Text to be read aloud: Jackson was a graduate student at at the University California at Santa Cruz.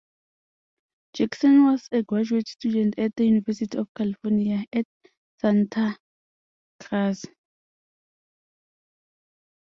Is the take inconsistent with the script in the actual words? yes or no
yes